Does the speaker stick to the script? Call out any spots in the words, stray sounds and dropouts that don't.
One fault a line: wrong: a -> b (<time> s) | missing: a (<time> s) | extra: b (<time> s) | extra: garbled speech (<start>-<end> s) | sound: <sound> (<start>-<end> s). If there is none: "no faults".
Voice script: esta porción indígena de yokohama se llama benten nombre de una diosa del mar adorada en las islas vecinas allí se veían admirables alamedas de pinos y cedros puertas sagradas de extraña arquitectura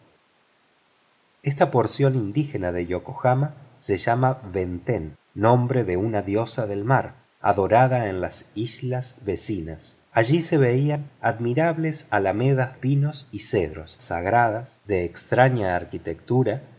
missing: de (12.8 s)
missing: puertas (14.0 s)